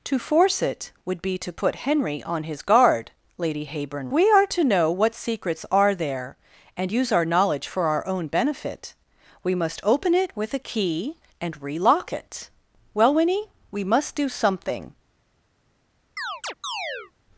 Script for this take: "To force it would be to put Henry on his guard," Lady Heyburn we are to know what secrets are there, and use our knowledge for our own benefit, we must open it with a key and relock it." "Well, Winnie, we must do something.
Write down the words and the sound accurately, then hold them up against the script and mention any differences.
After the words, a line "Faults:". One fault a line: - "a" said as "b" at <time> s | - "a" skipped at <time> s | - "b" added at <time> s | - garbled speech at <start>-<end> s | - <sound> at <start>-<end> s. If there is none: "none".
"To force it would be to put Henry on his guard," Lady Heyburn we are to know what secrets are there, and use our knowledge for our own benefit, we must open it with a key and relock it." "Well, Winnie, we must do something.
Faults:
- chirp at 16.2-17.1 s